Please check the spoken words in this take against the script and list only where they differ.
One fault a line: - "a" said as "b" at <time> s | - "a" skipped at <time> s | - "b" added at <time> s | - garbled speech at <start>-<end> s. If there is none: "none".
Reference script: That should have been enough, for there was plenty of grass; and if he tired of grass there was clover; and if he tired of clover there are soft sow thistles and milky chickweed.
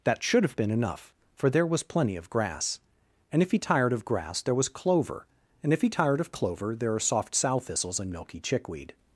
none